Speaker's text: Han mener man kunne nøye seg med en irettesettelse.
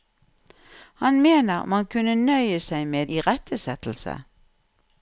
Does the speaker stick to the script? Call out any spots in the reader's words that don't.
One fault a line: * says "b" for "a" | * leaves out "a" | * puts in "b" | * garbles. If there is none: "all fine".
* leaves out "en"